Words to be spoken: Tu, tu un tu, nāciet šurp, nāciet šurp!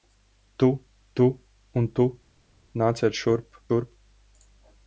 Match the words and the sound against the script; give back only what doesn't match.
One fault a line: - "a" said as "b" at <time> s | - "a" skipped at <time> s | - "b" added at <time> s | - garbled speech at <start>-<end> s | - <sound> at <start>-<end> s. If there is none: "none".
- "nāciet" skipped at 3.6 s